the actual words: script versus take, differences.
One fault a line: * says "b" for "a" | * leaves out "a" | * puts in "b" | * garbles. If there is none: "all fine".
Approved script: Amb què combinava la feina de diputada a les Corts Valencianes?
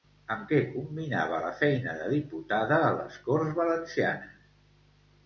all fine